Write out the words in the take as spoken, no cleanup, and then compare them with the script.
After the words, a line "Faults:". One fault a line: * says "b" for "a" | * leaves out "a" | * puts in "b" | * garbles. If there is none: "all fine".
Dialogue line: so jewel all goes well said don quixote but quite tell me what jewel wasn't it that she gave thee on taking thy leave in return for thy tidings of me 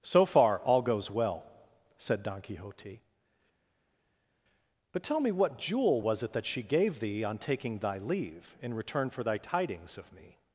so far all goes well said don quixote but tell me what jewel was it that she gave thee on taking thy leave in return for thy tidings of me
Faults:
* says "far" for "jewel"
* leaves out "quite"
* says "was" for "wasn't"